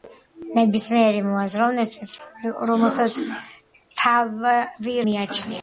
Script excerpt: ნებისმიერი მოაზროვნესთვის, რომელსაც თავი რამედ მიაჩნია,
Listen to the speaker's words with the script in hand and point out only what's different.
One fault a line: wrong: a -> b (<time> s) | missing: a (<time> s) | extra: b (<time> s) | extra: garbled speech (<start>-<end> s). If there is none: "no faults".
missing: რამედ (5.0 s)